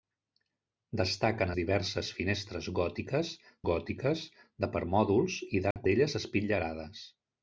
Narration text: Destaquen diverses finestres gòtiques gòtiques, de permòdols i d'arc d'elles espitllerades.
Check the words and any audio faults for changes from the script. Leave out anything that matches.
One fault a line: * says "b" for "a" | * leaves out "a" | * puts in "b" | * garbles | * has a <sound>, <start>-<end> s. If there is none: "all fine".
* has a dropout, 5.7-5.8 s